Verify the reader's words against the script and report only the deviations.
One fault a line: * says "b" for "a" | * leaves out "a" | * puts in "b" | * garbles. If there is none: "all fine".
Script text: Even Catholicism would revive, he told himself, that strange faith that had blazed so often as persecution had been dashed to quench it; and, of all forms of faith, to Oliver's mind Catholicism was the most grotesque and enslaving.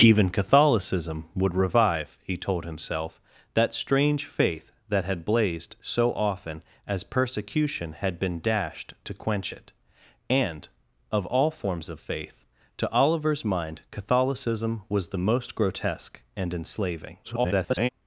* garbles